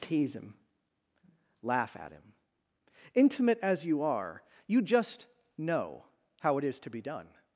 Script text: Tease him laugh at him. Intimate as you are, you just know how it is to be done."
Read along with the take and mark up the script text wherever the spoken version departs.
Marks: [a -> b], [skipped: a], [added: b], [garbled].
Tease him laugh at him. Intimate as you are, you just know how it is to be done."